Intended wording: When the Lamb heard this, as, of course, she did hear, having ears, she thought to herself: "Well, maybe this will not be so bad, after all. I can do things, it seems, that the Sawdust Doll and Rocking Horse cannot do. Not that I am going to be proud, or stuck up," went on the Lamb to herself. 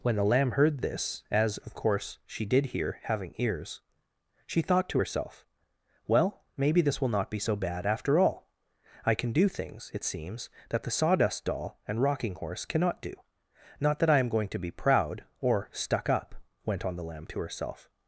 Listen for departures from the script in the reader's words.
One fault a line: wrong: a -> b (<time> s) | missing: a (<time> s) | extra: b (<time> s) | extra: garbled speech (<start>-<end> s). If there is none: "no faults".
no faults